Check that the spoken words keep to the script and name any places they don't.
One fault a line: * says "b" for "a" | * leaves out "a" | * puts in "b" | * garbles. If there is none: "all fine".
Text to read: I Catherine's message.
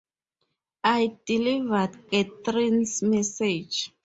* puts in "delivered"